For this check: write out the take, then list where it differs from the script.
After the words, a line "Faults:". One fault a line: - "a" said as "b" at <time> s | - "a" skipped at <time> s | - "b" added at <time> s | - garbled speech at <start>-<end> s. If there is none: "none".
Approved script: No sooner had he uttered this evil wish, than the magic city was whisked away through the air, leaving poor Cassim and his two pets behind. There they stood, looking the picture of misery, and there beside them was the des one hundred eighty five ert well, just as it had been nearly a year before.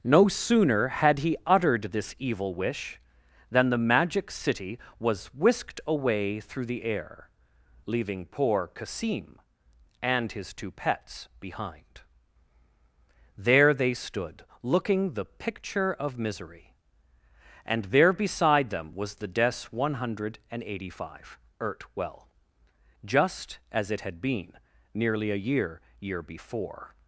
No sooner had he uttered this evil wish, than the magic city was whisked away through the air, leaving poor Cassim and his two pets behind. There they stood, looking the picture of misery, and there beside them was the des one hundred eighty five ert well, just as it had been nearly a year year before.
Faults:
- "year" added at 26.0 s